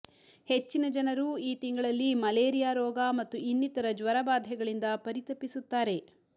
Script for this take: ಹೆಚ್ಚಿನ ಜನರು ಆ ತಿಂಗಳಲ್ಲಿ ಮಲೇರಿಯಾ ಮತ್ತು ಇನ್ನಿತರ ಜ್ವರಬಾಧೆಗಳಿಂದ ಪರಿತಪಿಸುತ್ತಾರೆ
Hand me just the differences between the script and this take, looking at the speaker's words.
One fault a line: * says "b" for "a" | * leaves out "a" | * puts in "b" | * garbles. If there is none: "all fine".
* says "ಈ" for "ಆ"
* puts in "ರೋಗ"